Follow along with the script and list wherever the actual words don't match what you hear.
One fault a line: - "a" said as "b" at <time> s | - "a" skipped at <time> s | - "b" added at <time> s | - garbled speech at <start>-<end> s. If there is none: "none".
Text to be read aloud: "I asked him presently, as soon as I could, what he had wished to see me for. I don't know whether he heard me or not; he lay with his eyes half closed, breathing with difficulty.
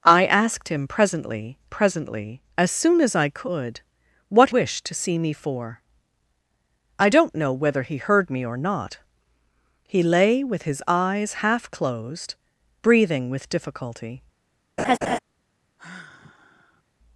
- "presently" added at 1.7 s
- "he had" skipped at 4.5 s